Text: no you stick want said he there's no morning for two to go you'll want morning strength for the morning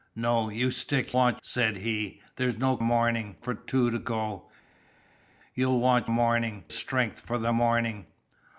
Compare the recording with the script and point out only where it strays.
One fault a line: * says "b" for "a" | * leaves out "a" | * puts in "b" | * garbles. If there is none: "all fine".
all fine